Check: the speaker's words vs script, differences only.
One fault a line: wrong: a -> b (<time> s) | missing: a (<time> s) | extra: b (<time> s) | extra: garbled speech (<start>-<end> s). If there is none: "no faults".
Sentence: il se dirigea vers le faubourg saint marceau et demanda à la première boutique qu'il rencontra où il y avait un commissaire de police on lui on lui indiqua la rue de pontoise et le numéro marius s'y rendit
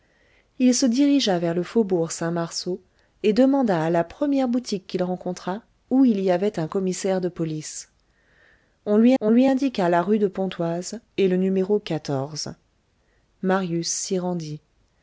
no faults